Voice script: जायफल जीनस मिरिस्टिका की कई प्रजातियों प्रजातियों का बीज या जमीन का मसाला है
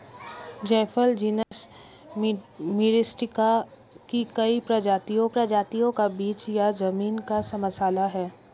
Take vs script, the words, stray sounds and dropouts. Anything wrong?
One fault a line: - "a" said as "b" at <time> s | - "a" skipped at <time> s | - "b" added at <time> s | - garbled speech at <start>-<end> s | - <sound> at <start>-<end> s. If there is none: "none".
- dropout at 1.4-1.5 s